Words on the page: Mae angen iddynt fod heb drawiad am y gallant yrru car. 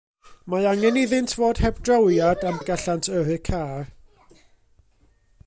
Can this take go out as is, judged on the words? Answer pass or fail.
pass